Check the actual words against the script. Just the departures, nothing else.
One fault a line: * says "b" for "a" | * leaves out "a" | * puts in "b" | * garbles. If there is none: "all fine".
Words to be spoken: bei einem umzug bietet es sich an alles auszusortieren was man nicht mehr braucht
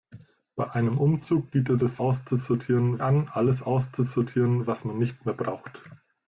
* says "auszusortieren" for "sich"